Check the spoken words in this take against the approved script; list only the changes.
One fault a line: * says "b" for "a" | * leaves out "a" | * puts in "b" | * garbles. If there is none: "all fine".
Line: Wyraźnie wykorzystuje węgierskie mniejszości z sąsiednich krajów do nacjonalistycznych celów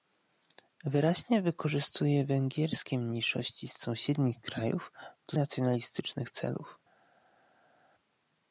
all fine